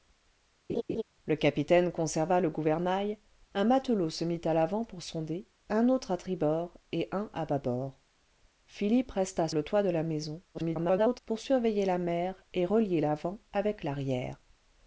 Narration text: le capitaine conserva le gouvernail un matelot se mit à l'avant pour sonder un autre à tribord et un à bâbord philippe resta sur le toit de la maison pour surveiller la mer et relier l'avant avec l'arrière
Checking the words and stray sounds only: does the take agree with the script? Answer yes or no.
no